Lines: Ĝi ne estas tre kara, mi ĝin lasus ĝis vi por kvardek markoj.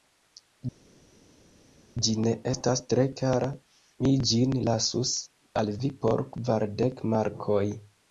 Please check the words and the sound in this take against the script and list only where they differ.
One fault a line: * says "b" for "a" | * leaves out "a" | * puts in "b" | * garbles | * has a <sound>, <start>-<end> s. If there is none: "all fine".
* says "al" for "ĝis"